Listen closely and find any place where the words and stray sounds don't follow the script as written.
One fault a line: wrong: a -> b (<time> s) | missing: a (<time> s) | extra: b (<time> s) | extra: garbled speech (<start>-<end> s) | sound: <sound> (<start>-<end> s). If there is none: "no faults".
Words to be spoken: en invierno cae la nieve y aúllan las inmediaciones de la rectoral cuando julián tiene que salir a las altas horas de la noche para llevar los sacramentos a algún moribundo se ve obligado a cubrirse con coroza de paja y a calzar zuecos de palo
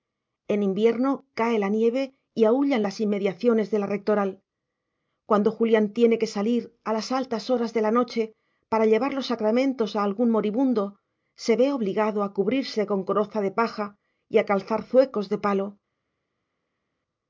no faults